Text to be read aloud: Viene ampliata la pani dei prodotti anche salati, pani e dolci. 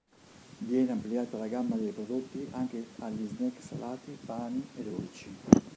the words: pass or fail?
fail